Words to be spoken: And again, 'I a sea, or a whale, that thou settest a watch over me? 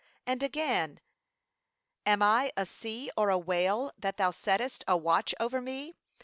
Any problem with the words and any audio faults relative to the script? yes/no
yes